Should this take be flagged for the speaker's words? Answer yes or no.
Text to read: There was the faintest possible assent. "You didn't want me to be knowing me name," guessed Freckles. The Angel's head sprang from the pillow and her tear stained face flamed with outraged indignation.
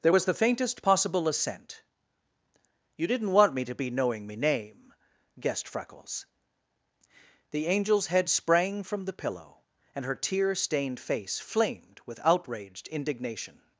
no